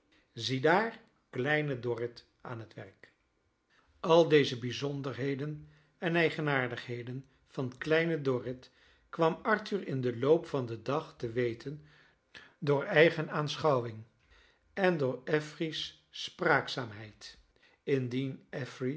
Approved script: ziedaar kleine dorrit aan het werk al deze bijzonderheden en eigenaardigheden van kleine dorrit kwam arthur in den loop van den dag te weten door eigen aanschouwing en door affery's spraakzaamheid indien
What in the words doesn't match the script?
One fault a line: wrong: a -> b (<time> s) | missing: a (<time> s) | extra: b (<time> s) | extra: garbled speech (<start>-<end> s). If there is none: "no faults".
no faults